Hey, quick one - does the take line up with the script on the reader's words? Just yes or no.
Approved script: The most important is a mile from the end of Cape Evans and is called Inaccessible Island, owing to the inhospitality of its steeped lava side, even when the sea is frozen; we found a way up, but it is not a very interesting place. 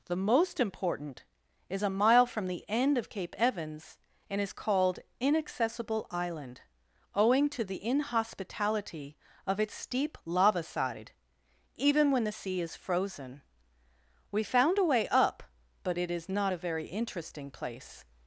no